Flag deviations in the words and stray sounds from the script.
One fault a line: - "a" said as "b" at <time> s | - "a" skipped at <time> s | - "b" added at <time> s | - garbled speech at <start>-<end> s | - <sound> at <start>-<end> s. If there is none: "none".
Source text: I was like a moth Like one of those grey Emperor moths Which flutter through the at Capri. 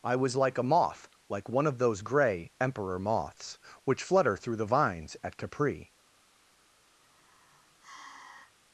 - "vines" added at 4.7 s
- sigh at 7.0-8.5 s